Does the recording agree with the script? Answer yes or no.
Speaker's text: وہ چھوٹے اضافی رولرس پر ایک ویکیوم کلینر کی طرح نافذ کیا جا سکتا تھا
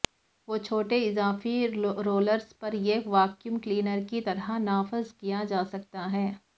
no